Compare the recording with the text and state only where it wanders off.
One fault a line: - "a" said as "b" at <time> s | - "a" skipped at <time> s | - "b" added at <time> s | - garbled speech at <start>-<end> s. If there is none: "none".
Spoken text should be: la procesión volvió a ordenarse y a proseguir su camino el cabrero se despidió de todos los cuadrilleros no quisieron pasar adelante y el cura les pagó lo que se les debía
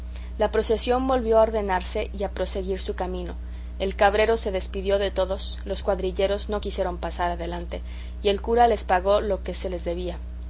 none